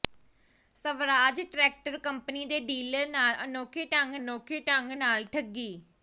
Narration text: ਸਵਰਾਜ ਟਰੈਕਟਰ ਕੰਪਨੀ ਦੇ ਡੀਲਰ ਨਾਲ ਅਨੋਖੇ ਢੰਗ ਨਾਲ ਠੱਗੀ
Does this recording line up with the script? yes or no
no